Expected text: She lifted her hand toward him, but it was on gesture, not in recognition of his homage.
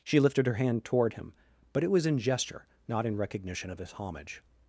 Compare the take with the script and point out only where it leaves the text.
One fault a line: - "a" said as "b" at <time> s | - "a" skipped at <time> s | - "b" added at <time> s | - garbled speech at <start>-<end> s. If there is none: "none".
- "on" said as "in" at 2.1 s